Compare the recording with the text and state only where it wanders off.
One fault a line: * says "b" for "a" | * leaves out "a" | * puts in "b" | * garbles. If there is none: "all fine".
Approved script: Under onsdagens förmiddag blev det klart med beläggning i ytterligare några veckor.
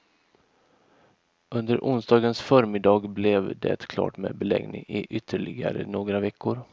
all fine